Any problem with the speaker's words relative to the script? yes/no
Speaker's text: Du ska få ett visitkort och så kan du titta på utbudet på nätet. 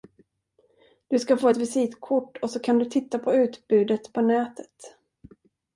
no